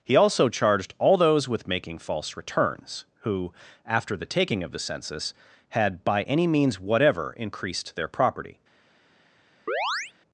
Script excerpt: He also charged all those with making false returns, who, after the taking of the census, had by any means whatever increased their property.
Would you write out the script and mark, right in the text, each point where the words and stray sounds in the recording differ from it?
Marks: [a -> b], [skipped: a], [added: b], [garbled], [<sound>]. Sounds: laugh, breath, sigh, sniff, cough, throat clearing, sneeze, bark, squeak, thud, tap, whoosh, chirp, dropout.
He also charged all those with making false returns, who, after the taking of the census, had by any means whatever increased their property. [chirp]